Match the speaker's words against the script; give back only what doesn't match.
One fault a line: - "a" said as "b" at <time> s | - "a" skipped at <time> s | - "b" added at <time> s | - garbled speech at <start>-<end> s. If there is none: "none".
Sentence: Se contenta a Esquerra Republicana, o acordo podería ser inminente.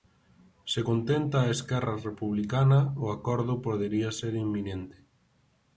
none